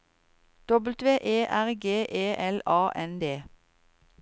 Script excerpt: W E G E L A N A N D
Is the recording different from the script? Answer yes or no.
yes